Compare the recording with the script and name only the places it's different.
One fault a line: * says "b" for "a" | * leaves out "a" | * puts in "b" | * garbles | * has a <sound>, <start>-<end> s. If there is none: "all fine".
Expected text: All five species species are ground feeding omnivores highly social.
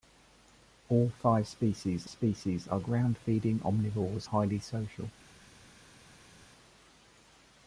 all fine